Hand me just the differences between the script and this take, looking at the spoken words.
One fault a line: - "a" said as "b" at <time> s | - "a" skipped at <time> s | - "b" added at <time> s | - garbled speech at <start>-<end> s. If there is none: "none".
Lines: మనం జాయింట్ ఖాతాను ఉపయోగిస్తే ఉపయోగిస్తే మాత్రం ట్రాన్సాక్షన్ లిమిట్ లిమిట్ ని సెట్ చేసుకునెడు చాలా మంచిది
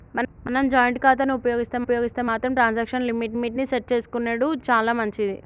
none